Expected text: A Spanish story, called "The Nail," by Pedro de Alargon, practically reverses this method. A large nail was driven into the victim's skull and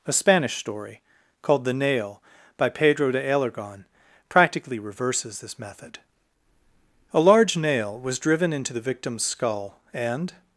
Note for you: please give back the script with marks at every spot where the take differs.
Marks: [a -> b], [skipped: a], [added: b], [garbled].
A Spanish story, called "The Nail," by Pedro de Alargon, practically reverses this method. A large nail was driven into the victim's skull and